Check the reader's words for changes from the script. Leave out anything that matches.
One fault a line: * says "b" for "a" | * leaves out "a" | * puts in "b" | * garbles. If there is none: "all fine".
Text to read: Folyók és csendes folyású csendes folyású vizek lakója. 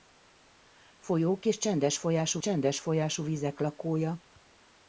all fine